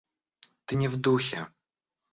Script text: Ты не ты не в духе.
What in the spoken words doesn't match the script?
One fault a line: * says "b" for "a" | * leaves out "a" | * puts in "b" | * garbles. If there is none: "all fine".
* leaves out "ты не"